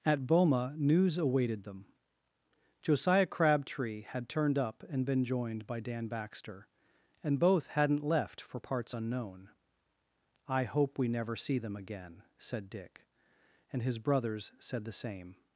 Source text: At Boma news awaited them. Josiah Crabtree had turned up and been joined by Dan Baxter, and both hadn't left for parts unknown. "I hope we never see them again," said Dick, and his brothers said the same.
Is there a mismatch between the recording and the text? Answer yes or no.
no